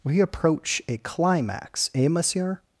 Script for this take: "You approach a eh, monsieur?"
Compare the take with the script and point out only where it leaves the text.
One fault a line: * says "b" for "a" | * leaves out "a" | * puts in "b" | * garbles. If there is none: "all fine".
* says "We" for "You"
* puts in "climax"